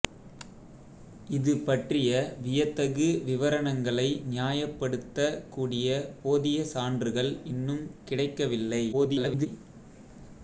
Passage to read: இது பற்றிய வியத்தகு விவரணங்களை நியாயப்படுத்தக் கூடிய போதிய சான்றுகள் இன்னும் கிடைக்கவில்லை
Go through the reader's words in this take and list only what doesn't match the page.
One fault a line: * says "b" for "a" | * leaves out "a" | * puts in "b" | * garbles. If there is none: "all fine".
* garbles